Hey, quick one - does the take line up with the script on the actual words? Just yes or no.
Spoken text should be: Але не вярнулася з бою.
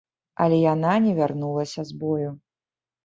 no